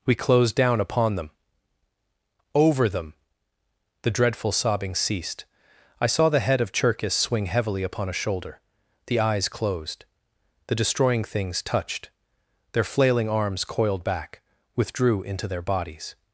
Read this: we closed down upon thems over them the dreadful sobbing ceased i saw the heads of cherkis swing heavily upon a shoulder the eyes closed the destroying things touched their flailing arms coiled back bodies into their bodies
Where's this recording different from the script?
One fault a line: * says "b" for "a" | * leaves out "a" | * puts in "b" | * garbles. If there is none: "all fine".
* says "them" for "thems"
* says "head" for "heads"
* says "withdrew" for "bodies"